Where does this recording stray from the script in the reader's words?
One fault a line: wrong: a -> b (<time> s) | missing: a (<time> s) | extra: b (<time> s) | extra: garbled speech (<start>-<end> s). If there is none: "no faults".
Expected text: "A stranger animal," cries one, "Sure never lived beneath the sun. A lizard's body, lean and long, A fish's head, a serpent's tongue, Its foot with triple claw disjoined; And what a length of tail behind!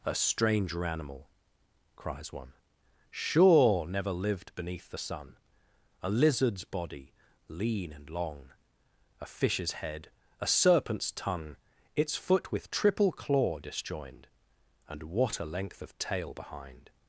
no faults